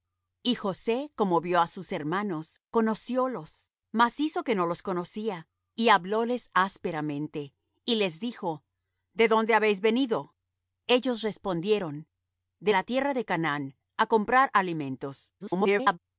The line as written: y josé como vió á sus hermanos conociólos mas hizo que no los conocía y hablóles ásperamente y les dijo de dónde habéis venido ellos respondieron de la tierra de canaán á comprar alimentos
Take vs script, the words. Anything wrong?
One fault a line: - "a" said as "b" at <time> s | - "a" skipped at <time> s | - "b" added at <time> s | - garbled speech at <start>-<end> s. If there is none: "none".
- garbled speech at 15.4-16.0 s